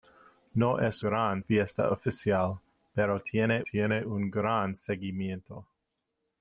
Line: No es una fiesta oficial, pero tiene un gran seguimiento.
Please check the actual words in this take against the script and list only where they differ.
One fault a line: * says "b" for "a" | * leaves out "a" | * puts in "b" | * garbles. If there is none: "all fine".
* says "gran" for "una"
* puts in "tiene"